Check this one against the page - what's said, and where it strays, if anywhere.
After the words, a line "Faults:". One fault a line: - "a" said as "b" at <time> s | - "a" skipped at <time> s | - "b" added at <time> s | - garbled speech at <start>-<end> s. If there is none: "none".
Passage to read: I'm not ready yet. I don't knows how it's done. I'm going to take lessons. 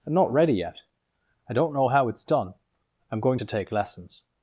I'm not ready yet. I don't know how it's done. I'm going to take lessons.
Faults:
- "knows" said as "know" at 1.7 s